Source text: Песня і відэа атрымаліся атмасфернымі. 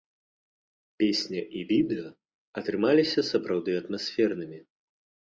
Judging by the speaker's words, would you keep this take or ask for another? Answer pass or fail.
fail